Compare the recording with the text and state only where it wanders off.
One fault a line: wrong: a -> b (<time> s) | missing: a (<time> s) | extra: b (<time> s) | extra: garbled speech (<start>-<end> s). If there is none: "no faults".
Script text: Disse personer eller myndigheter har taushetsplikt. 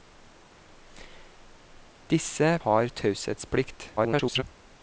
missing: personer eller myndigheter (2.6 s)
extra: garbled speech (4.0-4.4 s)